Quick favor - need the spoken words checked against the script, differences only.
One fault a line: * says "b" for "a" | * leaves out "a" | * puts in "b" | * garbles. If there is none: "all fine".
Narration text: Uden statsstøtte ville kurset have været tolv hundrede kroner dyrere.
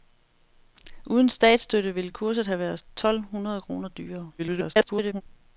* garbles